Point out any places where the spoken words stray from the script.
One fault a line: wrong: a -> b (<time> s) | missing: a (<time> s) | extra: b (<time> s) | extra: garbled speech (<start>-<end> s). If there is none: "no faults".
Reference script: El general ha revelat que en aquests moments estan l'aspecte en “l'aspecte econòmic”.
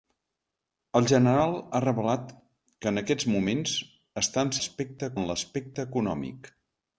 no faults